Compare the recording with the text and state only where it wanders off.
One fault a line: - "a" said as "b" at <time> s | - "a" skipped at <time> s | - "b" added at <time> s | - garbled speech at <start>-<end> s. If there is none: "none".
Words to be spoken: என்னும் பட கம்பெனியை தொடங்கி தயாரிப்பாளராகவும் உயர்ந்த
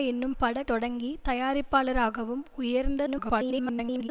- "கம்பெனியை" skipped at 0.6 s
- garbled speech at 3.1-4.1 s